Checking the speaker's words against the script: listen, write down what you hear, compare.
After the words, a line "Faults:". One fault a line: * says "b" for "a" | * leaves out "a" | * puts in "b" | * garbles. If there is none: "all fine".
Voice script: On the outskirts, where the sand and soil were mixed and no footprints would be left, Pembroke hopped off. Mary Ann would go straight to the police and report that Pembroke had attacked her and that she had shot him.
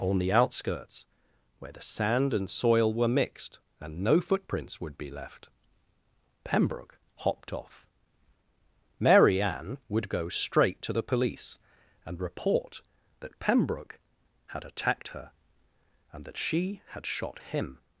On the outskirts, where the sand and soil were mixed and no footprints would be left, Pembroke hopped off. Mary Ann would go straight to the police and report that Pembroke had attacked her and that she had shot him.
Faults:
all fine